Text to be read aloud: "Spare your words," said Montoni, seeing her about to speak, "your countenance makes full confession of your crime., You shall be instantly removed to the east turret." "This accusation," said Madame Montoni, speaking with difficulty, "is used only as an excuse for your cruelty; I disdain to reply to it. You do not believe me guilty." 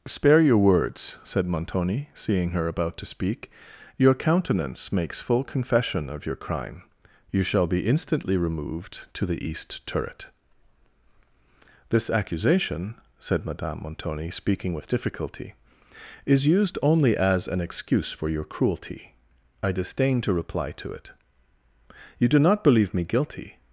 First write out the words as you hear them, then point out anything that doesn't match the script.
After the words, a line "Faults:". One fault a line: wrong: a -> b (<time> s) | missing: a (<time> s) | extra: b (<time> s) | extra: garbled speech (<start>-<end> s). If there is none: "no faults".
"Spare your words," said Montoni, seeing her about to speak, "your countenance makes full confession of your crime., You shall be instantly removed to the east turret." "This accusation," said Madame Montoni, speaking with difficulty, "is used only as an excuse for your cruelty; I disdain to reply to it. You do not believe me guilty."
Faults:
no faults